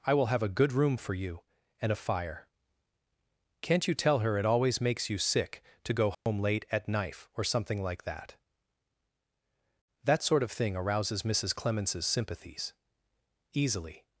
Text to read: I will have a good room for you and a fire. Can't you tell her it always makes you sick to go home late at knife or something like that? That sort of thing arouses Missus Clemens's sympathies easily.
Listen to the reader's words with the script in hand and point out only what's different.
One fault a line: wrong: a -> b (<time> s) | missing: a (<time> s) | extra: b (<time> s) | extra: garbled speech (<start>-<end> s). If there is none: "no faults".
no faults